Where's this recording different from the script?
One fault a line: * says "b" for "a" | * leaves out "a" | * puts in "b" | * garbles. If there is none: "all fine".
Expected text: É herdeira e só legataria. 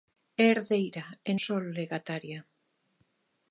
all fine